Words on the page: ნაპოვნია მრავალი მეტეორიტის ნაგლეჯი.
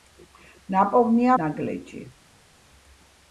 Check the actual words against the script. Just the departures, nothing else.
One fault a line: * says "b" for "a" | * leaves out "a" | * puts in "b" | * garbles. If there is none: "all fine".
* leaves out "მრავალი მეტეორიტის"